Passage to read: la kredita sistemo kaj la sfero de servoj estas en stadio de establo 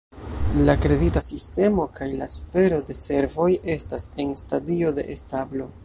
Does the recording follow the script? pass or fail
pass